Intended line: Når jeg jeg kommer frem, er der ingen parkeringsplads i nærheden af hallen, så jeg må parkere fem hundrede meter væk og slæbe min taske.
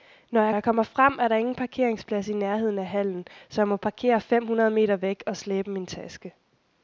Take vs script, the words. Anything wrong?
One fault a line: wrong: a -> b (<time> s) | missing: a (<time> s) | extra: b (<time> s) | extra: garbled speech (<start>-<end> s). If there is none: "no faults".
no faults